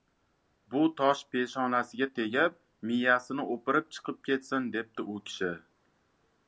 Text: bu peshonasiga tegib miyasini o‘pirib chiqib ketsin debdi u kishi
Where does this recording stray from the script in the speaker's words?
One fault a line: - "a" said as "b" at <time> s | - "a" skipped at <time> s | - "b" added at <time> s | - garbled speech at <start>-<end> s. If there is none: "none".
- "tosh" added at 1.0 s